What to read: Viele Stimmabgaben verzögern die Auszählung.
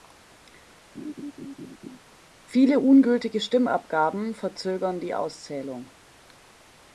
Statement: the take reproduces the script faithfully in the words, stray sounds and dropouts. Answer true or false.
false